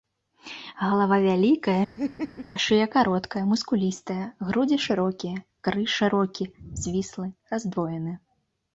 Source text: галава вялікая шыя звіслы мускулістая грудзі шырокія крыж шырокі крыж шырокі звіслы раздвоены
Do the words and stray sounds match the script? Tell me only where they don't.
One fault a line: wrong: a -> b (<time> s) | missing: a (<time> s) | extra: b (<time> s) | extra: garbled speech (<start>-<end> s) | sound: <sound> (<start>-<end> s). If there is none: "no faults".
sound: laugh (2.0-2.5 s)
wrong: звіслы -> кароткая (3.0 s)
missing: крыж шырокі (6.5 s)